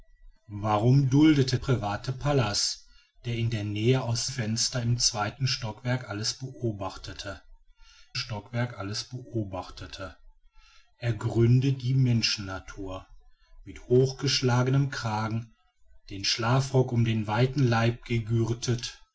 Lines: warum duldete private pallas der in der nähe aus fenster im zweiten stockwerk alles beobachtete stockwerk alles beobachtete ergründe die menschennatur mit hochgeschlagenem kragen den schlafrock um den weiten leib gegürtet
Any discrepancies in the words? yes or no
no